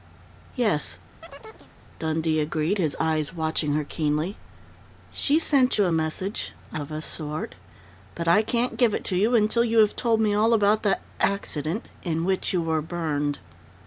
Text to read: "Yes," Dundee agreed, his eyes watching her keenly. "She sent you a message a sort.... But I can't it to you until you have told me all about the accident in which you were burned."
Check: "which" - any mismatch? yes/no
no